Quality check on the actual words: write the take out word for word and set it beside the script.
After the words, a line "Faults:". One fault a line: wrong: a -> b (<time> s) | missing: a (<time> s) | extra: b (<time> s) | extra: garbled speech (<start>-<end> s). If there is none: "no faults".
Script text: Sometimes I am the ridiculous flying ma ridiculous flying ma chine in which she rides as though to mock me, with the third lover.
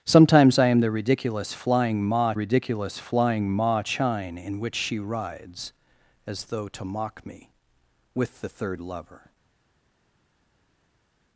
Sometimes I am the ridiculous flying ma ridiculous flying ma chine in which she rides as though to mock me, with the third lover.
Faults:
no faults